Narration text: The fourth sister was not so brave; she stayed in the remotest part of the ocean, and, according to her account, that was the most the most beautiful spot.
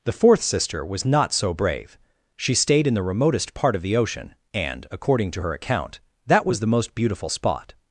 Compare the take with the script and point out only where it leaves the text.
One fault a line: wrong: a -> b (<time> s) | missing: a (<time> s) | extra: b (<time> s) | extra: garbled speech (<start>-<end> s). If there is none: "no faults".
missing: the most (6.9 s)